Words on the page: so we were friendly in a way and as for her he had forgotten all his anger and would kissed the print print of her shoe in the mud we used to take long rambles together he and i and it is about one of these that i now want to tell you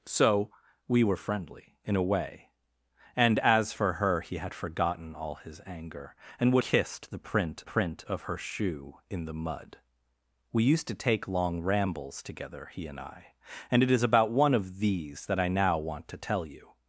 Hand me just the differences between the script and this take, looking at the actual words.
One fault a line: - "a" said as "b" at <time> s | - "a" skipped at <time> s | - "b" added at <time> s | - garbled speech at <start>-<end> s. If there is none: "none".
none